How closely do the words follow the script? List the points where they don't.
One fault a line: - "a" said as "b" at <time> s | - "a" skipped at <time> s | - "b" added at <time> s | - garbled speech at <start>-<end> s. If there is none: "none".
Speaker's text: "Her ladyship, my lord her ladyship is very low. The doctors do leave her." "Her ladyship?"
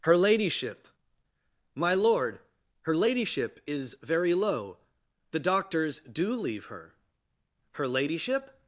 none